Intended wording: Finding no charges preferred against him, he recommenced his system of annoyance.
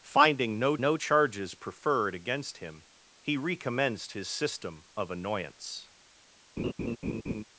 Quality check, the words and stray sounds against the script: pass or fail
fail